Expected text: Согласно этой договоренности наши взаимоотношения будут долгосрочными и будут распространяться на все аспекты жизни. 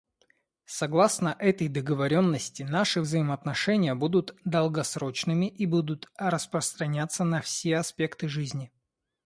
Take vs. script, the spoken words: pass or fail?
pass